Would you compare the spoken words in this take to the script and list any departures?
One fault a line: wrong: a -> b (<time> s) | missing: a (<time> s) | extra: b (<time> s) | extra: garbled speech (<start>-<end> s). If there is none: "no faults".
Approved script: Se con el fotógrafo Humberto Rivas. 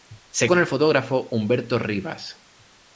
no faults